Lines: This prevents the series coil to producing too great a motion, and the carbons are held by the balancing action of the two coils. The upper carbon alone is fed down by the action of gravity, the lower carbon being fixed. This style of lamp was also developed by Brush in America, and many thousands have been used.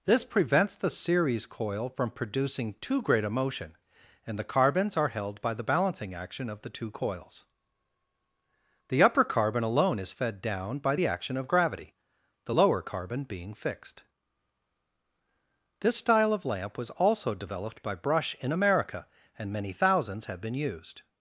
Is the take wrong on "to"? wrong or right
wrong